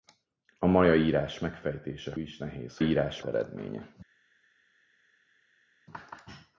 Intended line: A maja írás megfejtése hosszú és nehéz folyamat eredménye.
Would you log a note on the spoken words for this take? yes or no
yes